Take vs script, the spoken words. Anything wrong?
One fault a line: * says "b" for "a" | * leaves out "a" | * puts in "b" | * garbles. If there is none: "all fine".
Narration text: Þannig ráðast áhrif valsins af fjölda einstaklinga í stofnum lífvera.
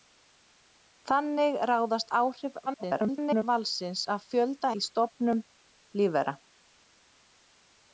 * garbles
* leaves out "einstaklinga"